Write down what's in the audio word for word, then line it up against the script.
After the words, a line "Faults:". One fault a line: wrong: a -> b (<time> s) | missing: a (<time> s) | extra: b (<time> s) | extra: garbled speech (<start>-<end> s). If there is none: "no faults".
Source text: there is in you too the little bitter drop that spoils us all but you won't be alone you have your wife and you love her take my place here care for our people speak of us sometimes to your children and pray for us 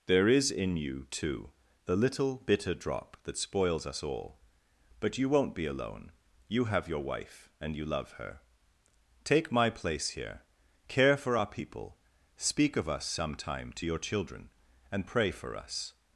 there is in you too the little bitter drop that spoils us all but you won't be alone you have your wife and you love her take my place here care for our people speak of us sometime to your children and pray for us
Faults:
wrong: sometimes -> sometime (13.1 s)